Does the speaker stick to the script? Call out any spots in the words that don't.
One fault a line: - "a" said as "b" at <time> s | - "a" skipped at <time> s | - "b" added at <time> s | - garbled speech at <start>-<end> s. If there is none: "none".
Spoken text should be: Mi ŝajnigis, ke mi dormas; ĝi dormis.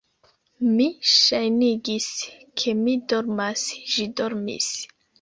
none